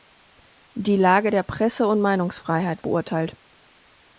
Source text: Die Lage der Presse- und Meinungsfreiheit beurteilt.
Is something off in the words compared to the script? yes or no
no